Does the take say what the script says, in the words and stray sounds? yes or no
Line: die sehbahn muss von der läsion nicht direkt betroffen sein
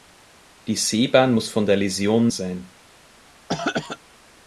no